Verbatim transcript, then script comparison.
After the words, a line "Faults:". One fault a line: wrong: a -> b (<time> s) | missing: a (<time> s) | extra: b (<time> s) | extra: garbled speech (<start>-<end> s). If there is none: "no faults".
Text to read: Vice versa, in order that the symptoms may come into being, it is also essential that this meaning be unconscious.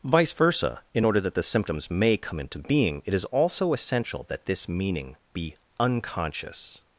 Vice versa, in order that the symptoms may come into being, it is also essential that this meaning be unconscious.
Faults:
no faults